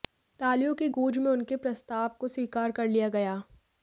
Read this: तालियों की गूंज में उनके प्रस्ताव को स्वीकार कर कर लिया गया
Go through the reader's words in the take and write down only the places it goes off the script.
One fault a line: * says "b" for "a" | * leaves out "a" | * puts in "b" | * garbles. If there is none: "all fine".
* leaves out "कर"